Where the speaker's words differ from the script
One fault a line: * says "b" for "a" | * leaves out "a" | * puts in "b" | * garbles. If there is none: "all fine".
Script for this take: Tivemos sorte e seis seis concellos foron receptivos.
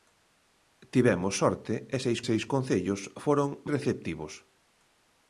all fine